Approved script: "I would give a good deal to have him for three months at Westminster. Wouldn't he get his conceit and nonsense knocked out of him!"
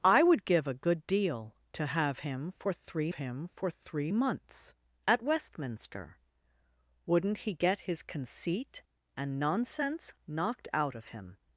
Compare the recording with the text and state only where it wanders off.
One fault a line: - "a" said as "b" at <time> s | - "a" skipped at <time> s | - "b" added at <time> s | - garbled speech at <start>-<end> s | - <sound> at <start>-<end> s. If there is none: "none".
- "him for three" added at 3.1 s